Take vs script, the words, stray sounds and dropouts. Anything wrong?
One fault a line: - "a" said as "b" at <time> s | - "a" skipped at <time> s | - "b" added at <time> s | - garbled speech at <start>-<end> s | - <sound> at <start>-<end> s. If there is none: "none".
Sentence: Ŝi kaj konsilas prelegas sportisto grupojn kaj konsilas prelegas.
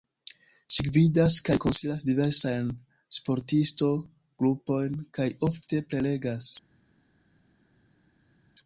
- "gvidas" added at 0.8 s
- "prelegas" said as "diversajn" at 2.1 s
- "konsilas" said as "ofte" at 5.5 s